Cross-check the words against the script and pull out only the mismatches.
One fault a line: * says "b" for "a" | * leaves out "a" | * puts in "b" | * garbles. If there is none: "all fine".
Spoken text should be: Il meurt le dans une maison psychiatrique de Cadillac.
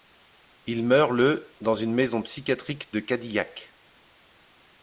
all fine